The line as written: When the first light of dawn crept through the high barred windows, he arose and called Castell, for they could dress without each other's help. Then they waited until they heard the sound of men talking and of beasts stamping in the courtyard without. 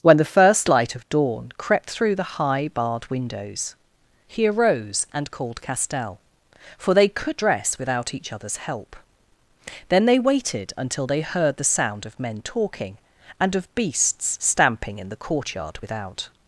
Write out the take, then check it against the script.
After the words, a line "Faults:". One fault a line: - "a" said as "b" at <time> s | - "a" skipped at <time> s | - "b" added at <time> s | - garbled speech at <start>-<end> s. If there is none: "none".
When the first light of dawn crept through the high barred windows, he arose and called Castell, for they could dress without each other's help. Then they waited until they heard the sound of men talking and of beasts stamping in the courtyard without.
Faults:
none